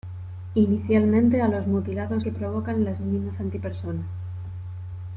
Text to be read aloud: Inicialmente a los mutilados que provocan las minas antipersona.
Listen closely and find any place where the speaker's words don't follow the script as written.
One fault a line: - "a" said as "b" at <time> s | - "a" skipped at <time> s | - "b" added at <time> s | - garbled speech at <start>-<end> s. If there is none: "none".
none